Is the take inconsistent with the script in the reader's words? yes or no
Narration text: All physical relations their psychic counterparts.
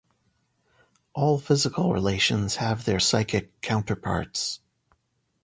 yes